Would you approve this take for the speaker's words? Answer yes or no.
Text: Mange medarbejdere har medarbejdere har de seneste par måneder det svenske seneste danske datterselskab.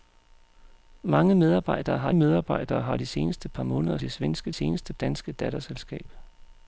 yes